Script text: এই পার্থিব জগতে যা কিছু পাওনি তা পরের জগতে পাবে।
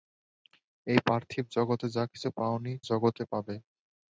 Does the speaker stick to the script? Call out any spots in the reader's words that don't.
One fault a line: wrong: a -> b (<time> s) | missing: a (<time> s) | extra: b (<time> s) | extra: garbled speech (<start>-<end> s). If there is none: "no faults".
missing: তা পরের (2.7 s)